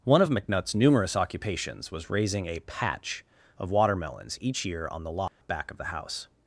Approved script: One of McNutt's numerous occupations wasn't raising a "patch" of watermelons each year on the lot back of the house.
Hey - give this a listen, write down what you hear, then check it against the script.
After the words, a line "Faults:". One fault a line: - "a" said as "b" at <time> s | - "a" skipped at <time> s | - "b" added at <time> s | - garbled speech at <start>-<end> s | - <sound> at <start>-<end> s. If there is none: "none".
One of McNutt's numerous occupations was raising a "patch" of watermelons each year on the lot back of the house.
Faults:
- "wasn't" said as "was" at 1.9 s
- dropout at 5.3-5.4 s